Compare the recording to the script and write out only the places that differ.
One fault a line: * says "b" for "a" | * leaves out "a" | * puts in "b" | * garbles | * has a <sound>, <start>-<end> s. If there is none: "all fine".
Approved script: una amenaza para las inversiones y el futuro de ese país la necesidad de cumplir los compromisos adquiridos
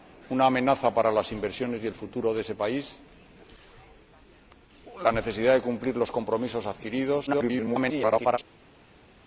* garbles